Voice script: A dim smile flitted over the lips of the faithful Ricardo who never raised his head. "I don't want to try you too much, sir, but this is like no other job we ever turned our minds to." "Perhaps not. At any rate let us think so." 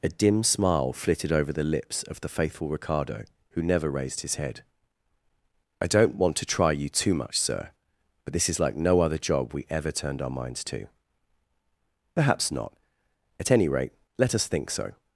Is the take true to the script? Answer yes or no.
yes